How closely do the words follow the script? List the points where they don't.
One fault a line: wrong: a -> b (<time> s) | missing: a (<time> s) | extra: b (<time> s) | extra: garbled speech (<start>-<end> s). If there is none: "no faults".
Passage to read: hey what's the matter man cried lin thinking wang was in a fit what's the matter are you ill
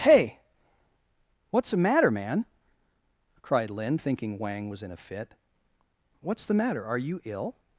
no faults